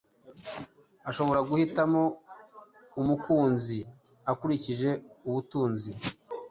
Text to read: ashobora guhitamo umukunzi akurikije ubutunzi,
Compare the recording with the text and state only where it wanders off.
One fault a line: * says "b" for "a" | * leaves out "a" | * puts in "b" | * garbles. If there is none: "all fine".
all fine